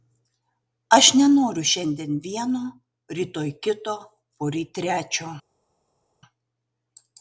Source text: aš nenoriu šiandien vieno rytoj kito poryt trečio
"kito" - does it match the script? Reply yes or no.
yes